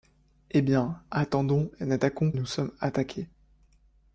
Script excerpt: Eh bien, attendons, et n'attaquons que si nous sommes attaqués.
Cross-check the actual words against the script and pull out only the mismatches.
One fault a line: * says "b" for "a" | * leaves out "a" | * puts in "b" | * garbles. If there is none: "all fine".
* leaves out "que si"